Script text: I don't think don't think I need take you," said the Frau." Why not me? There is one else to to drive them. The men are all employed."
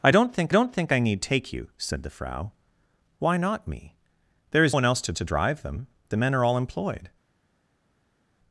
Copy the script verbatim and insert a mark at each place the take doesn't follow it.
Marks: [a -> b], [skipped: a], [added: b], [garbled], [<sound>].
I don't think don't think I need take you," said the Frau." Why not me? There is one else to to drive them. The men are all employed."